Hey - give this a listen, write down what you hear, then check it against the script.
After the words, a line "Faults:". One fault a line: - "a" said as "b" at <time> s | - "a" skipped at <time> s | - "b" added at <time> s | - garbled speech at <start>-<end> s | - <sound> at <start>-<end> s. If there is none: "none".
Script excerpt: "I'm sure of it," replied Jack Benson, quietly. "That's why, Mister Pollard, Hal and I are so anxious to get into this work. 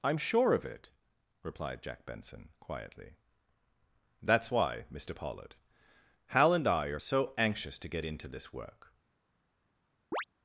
"I'm sure of it," replied Jack Benson, quietly. "That's why, Mister Pollard, Hal and I are so anxious to get into this work.
Faults:
- chirp at 10.1-10.2 s